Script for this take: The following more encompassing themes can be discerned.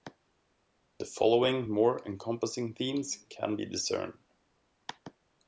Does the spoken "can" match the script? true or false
true